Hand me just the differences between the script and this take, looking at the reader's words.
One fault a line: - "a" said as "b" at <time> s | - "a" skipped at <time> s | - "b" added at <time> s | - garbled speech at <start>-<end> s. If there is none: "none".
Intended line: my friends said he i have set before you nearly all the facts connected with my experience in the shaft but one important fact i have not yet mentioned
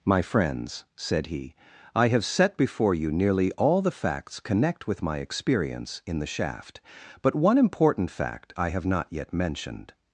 - "connected" said as "connect" at 4.4 s